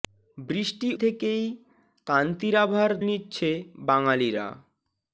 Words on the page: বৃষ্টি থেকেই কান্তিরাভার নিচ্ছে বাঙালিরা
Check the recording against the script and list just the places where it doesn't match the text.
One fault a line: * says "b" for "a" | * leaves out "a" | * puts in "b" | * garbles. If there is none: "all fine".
all fine